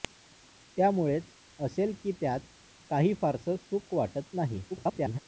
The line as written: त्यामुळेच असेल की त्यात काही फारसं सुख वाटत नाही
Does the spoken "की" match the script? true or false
true